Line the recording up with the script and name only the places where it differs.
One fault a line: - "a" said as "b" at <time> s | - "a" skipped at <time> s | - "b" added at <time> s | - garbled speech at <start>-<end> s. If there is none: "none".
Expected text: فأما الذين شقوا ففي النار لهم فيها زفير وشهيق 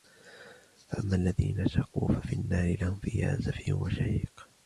none